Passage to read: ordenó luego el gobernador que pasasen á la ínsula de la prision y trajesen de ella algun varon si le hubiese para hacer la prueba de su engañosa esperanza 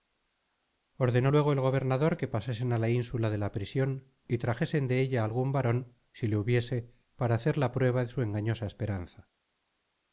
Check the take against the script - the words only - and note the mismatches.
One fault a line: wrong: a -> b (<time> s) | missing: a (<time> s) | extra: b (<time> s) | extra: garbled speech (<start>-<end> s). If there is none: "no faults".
no faults